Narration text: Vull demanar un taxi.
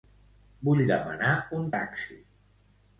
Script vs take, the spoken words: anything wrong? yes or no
no